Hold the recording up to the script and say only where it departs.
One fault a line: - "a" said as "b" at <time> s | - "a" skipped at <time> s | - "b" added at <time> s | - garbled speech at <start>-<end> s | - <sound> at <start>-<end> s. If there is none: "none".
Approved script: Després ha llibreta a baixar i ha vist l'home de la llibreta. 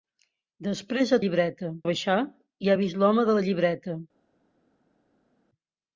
none